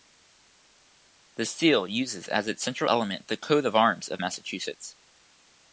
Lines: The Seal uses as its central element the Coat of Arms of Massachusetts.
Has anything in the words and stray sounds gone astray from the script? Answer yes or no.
no